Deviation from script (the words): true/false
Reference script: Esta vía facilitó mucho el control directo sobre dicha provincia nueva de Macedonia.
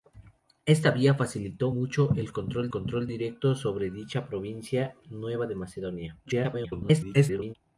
true